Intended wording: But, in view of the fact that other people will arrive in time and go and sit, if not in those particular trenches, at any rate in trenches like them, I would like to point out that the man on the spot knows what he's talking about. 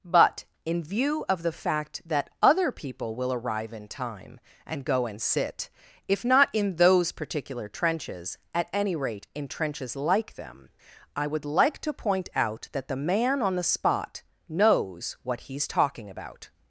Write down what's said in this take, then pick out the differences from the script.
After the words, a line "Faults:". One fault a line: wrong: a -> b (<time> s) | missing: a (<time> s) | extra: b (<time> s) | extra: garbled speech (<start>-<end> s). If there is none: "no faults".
But, in view of the fact that other people will arrive in time and go and sit, if not in those particular trenches, at any rate in trenches like them, I would like to point out that the man on the spot knows what he's talking about.
Faults:
no faults